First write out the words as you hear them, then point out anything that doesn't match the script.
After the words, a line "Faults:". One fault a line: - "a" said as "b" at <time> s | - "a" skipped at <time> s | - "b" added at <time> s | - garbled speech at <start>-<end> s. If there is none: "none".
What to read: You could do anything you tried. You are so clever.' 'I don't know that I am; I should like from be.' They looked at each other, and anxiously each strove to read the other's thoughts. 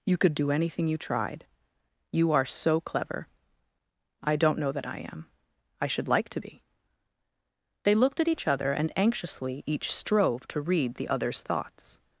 You could do anything you tried. You are so clever.' 'I don't know that I am; I should like to be.' They looked at each other, and anxiously each strove to read the other's thoughts.
Faults:
- "from" said as "to" at 6.3 s